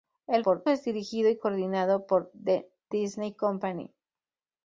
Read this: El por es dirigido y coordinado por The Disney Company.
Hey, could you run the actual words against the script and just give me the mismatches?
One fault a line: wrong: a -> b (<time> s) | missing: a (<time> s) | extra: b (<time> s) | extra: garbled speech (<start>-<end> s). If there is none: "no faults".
no faults